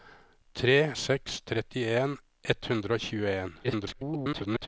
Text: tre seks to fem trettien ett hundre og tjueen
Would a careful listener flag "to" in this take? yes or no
yes